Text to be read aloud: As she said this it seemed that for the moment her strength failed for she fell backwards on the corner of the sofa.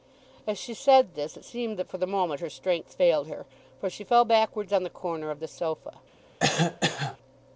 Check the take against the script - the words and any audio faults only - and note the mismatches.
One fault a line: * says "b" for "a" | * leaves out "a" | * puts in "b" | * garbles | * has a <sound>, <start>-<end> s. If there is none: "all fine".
* puts in "her"
* has a cough, 6.4-7.2 s